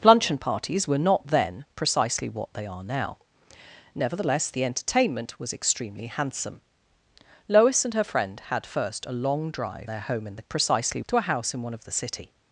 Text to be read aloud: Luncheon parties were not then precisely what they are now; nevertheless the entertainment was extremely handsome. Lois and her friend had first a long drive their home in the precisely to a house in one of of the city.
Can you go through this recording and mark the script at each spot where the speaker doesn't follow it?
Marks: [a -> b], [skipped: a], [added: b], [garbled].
Luncheon parties were not then precisely what they are now; nevertheless the entertainment was extremely handsome. Lois and her friend had first a long drive their home in the precisely to a house in one of of the city.